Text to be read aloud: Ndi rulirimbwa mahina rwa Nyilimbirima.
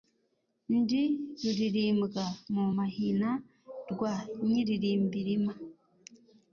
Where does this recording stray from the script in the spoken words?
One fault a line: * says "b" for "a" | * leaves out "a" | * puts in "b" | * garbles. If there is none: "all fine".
* puts in "mu"